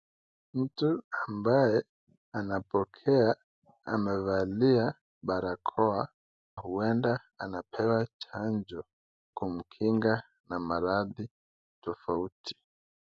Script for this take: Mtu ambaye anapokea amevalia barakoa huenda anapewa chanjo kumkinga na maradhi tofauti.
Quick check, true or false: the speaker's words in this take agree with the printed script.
true